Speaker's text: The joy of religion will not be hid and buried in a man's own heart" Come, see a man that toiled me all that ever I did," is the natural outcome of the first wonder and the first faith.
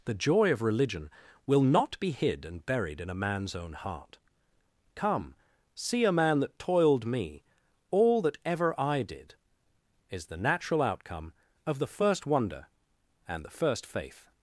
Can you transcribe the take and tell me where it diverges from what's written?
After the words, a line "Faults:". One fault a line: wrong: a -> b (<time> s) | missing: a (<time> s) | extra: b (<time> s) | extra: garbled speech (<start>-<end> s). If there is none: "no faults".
The joy of religion will not be hid and buried in a man's own heart" Come, see a man that toiled me all that ever I did," is the natural outcome of the first wonder and the first faith.
Faults:
no faults